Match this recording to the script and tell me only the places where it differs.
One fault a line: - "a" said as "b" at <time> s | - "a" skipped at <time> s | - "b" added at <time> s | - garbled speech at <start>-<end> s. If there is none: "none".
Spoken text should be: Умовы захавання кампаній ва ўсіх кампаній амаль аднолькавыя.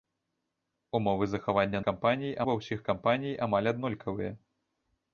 none